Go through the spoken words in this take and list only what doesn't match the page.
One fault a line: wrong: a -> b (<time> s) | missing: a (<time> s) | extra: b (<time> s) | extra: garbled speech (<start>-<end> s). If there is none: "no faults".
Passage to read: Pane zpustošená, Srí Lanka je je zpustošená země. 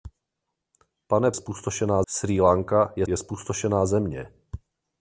no faults